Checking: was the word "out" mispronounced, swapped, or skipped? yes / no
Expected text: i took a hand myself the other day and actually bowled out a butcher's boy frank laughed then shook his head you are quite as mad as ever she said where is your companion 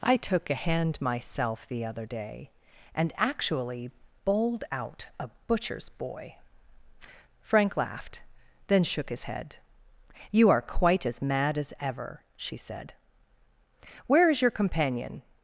no